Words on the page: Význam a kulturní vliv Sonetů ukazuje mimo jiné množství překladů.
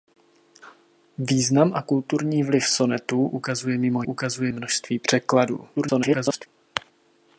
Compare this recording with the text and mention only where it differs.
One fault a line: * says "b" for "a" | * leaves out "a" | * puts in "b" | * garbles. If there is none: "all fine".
* says "ukazuje" for "jiné"
* garbles